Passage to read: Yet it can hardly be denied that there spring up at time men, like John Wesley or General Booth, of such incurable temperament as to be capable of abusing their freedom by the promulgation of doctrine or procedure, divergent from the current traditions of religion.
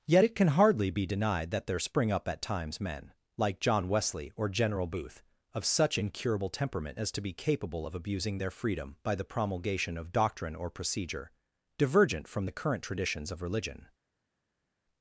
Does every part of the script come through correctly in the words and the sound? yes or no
no